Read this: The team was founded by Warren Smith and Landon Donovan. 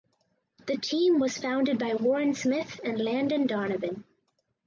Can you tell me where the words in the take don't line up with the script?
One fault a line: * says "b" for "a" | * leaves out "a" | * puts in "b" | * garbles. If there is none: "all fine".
all fine